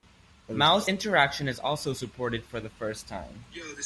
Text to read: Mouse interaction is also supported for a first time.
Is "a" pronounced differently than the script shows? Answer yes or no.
yes